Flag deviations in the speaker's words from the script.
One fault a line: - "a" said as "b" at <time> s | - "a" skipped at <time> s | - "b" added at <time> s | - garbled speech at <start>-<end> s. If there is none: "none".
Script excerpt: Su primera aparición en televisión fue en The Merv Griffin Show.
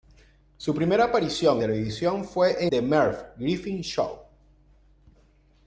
- "en" skipped at 1.6 s
- "en" skipped at 2.7 s